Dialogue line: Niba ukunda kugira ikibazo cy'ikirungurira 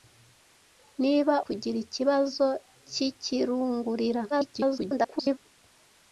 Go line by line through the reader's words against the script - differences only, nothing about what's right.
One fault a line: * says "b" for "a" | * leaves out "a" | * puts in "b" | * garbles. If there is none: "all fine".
* leaves out "ukunda"
* garbles